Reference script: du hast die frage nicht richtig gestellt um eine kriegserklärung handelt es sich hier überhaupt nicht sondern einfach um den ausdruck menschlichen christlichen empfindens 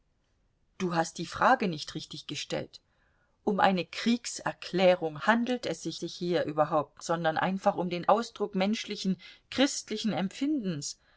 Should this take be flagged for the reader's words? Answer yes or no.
yes